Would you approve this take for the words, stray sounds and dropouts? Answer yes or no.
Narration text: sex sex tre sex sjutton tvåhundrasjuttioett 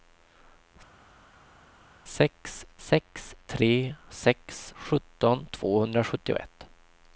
yes